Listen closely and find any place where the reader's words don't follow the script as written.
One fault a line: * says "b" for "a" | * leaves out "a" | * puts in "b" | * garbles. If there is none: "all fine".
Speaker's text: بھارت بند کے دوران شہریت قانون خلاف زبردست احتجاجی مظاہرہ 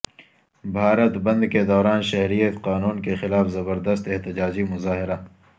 * puts in "کے"